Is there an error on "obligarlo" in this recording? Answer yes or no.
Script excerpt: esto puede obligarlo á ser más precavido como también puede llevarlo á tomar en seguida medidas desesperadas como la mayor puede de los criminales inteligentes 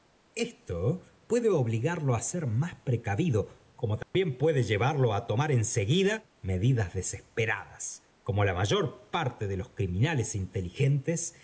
no